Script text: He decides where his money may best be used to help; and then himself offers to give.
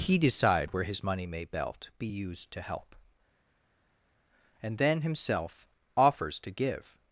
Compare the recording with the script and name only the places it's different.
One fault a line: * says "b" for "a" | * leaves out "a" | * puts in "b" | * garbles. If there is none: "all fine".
* says "decide" for "decides"
* says "belt" for "best"